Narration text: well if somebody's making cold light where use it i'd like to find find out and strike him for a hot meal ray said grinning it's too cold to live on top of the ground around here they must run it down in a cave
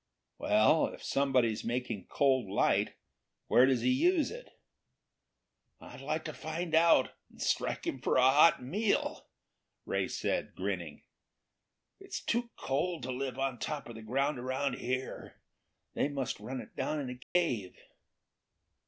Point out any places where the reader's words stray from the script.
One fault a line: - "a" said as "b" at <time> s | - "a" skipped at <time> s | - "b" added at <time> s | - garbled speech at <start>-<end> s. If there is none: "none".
- "does he" added at 3.7 s
- "find" skipped at 6.7 s